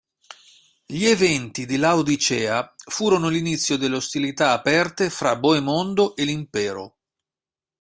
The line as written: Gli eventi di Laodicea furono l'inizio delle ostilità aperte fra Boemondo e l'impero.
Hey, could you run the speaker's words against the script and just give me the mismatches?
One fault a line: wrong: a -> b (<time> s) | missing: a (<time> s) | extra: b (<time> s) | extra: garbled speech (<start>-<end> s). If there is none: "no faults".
no faults